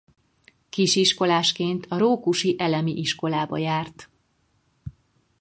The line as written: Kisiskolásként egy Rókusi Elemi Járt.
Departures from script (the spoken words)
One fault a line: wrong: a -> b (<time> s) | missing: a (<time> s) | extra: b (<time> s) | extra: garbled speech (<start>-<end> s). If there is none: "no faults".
wrong: egy -> a (1.9 s)
extra: Iskolába (2.9 s)